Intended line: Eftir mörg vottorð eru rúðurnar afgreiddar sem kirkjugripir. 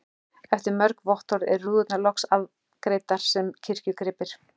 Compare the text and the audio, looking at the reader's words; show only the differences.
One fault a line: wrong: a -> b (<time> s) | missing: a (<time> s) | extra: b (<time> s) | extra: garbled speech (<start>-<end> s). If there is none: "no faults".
extra: loks (2.0 s)